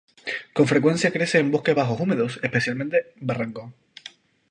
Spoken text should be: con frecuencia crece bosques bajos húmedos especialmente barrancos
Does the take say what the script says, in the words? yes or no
no